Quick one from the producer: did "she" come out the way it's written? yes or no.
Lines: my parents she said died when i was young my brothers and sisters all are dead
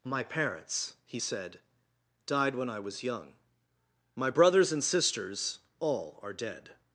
no